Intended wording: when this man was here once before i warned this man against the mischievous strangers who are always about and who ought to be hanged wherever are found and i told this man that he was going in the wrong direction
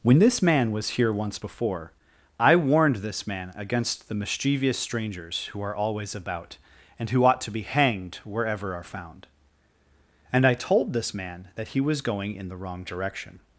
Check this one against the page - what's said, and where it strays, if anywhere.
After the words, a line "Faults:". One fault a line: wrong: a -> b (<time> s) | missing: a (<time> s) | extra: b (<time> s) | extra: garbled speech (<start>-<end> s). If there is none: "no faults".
when this man was here once before i warned this man against the mischievous strangers who are always about and who ought to be hanged wherever are found and i told this man that he was going in the wrong direction
Faults:
no faults